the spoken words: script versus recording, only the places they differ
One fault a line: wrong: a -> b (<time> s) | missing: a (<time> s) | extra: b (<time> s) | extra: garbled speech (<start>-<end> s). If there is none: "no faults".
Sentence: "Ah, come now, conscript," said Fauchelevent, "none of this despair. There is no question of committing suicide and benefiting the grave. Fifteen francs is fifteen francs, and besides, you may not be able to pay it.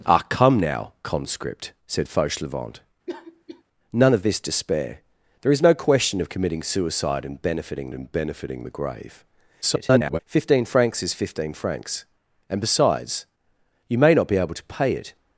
extra: and benefiting (7.9 s)
extra: garbled speech (9.6-10.2 s)